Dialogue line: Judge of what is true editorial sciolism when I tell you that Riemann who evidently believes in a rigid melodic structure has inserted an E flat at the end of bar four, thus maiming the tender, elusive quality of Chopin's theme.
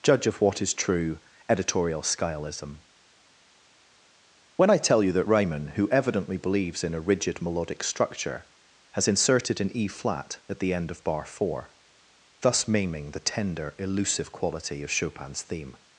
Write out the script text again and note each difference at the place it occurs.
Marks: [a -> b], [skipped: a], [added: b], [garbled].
Judge of what is true editorial sciolism when I tell you that Riemann who evidently believes in a rigid melodic structure has inserted an E flat at the end of bar four, thus maiming the tender, elusive quality of Chopin's theme.